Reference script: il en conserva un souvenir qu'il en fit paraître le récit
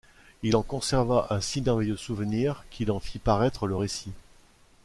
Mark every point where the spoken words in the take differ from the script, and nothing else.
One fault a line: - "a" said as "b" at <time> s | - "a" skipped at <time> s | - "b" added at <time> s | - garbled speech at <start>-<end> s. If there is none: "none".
- "si merveilleux" added at 1.4 s